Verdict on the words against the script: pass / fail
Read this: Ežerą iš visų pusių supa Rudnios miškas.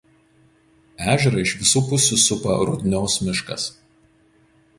pass